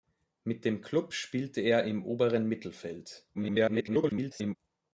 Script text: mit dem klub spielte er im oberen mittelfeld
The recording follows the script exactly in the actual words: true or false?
false